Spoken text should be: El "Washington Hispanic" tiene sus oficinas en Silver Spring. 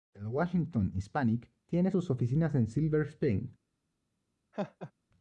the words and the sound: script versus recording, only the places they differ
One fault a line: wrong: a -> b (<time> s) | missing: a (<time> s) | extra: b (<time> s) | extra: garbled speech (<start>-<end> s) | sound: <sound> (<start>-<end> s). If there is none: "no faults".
sound: laugh (4.5-4.9 s)